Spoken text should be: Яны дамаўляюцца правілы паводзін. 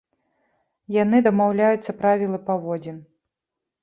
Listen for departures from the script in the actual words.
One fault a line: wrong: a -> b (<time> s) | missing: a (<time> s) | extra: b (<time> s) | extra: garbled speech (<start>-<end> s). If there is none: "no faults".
no faults